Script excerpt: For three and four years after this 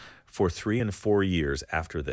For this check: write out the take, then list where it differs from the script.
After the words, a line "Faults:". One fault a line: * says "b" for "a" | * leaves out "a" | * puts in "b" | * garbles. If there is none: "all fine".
For three and four years after this
Faults:
all fine